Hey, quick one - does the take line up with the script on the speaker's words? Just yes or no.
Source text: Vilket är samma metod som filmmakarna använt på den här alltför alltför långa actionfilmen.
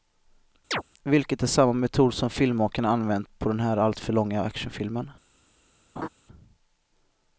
no